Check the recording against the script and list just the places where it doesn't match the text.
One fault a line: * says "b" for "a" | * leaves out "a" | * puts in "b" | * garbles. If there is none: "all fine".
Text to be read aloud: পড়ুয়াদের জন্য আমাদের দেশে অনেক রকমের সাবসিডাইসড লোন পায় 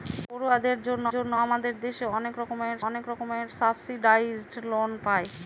* puts in "জন্য"
* puts in "অনেক রকমের"